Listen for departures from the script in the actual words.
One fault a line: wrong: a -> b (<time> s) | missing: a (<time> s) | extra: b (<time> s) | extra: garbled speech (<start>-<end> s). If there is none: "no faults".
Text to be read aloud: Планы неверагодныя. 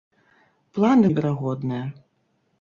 no faults